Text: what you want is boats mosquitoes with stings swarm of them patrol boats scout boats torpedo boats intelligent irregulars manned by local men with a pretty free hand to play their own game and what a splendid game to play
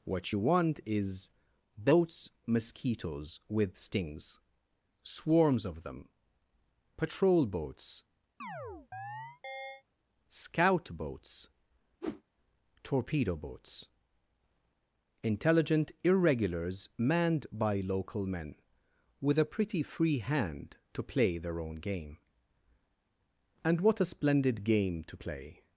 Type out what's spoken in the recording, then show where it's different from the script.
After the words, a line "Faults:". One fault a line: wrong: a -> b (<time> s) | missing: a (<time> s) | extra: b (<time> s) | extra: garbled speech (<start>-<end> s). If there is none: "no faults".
what you want is boats mosquitoes with stings swarms of them patrol boats scout boats torpedo boats intelligent irregulars manned by local men with a pretty free hand to play their own game and what a splendid game to play
Faults:
wrong: swarm -> swarms (5.0 s)